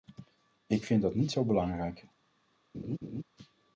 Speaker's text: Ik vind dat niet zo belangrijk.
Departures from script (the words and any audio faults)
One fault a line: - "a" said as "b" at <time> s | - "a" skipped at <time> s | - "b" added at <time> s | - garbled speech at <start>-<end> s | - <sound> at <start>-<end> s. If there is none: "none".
- laugh at 2.7-3.2 s